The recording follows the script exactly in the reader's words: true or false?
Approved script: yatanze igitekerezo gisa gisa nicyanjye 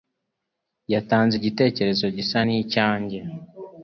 false